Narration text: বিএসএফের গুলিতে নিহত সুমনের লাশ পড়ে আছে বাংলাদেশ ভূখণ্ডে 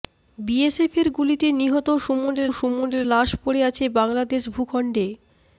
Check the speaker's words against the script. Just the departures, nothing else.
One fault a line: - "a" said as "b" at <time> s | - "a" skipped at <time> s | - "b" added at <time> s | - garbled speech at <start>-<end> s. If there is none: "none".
- "সুমনের" added at 2.5 s